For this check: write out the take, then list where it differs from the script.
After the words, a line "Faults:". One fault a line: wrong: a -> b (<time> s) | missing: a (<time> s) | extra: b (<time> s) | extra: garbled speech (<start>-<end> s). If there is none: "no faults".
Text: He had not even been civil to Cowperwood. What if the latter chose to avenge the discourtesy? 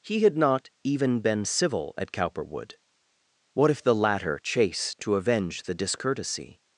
He had not even been civil at Cowperwood. What if the latter chase to avenge the discourtesy?
Faults:
wrong: to -> at (2.0 s)
wrong: chose -> chase (4.4 s)